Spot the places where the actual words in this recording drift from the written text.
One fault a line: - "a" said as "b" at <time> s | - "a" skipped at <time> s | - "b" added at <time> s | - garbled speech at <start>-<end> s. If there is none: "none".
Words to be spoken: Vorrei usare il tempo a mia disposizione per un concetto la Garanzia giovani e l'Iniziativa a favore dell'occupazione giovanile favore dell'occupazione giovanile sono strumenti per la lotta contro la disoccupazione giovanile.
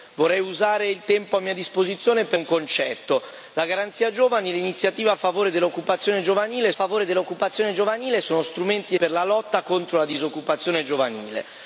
none